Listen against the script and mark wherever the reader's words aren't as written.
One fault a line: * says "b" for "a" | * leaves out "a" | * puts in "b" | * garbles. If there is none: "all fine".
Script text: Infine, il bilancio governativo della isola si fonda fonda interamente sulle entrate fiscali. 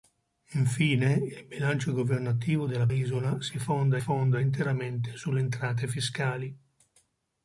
all fine